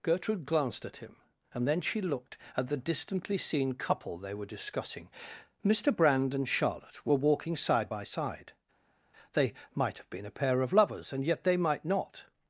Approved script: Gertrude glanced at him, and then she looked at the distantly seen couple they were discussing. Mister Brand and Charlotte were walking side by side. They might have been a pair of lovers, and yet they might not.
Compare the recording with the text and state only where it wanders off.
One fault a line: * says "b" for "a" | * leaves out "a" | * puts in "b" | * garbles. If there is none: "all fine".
all fine